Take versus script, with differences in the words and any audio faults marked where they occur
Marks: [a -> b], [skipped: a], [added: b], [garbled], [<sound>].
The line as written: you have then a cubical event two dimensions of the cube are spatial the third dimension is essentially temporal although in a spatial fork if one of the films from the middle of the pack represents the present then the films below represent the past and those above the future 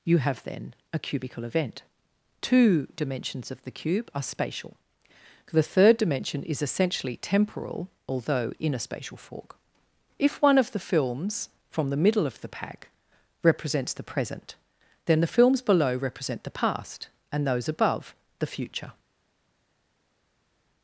you have then a cubical event two dimensions of the cube are spatial the third dimension is essentially temporal although in a spatial fork if one of the films from the middle of the pack represents the present then the films below represent the past and those above the future